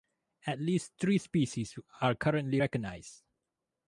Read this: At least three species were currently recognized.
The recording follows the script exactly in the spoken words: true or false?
false